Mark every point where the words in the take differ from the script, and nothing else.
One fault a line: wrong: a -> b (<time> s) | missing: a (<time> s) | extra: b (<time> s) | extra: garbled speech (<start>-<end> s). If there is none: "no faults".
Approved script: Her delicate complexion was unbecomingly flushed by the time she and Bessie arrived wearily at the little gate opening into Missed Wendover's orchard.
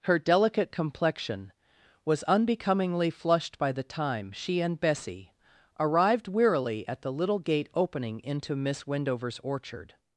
wrong: Missed -> Miss (8.6 s)